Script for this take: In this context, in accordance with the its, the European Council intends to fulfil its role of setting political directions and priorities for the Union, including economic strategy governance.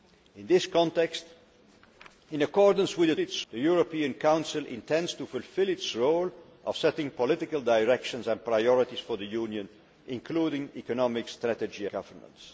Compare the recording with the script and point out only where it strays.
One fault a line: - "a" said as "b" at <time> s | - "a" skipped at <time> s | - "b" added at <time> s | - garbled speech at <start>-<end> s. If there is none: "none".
none